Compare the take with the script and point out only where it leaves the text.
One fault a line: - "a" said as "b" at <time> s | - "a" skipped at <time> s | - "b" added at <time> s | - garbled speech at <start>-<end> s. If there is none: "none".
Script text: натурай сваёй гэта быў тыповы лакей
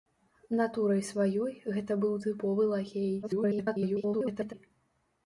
- garbled speech at 3.2-4.5 s